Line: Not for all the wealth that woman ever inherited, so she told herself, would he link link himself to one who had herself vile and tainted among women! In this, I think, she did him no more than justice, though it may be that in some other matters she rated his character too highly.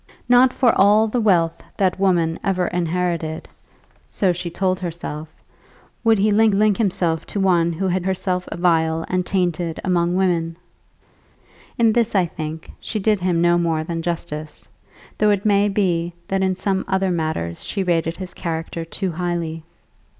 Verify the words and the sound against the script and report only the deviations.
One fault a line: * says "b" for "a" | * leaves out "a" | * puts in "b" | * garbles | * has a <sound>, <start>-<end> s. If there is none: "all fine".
all fine